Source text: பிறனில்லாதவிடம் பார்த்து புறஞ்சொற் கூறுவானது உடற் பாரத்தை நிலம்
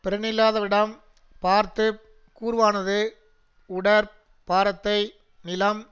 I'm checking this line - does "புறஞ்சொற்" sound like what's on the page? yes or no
no